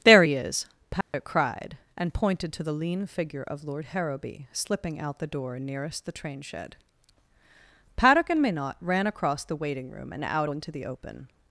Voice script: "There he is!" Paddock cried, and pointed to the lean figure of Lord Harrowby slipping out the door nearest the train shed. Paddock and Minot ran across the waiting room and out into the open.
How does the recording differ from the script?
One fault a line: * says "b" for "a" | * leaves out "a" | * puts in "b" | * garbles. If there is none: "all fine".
all fine